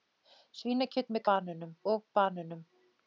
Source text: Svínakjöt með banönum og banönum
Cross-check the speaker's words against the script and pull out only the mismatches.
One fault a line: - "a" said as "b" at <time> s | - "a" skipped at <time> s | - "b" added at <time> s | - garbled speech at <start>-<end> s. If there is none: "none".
none